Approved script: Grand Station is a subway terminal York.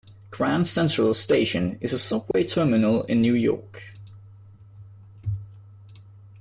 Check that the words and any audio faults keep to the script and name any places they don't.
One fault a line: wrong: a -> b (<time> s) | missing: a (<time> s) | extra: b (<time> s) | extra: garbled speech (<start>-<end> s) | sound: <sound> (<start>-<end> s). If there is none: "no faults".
extra: Central (0.7 s)
sound: dropout (2.3-2.3 s)
extra: in New (3.0 s)